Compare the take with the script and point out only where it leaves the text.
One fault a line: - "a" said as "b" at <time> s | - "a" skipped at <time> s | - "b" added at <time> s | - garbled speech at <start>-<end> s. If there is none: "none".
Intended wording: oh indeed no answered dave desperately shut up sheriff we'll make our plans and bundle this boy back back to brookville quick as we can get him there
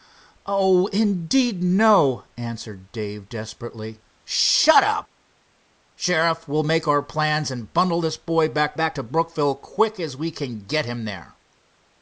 none